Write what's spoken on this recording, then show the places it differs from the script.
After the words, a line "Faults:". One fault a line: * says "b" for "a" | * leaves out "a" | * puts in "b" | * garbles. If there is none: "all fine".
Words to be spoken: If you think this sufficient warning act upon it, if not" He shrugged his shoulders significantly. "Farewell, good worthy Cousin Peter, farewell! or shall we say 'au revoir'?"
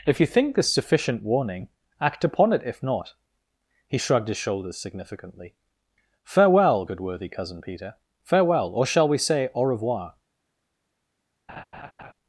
If you think this sufficient warning act upon it, if not" He shrugged his shoulders significantly. "Farewell, good worthy Cousin Peter, farewell! or shall we say 'au revoir'?"
Faults:
all fine